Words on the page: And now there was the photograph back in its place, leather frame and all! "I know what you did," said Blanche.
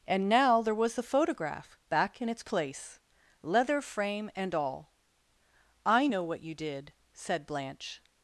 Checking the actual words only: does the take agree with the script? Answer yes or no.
yes